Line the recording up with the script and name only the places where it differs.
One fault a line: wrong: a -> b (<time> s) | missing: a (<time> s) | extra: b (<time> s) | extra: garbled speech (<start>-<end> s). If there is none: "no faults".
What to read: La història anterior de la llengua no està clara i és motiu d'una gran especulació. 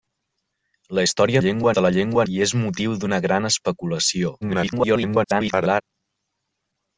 wrong: anterior -> llengua (1.4 s)
missing: no està clara (2.3 s)
extra: garbled speech (4.4-5.8 s)